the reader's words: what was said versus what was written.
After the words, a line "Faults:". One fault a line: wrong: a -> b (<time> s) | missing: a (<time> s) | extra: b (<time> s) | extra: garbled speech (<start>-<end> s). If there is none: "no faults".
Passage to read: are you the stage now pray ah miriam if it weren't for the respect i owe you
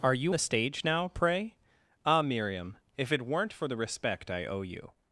are you the stage now pray ah miriam if it weren't for the respect i owe you
Faults:
no faults